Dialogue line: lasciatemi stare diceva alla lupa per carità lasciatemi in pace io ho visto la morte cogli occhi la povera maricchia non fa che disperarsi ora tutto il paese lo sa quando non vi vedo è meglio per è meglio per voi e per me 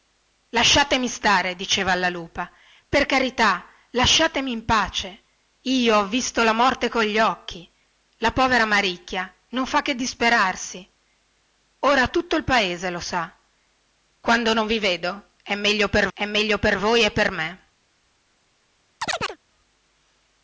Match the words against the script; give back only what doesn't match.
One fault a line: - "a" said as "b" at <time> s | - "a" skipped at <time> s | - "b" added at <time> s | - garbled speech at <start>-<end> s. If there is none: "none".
none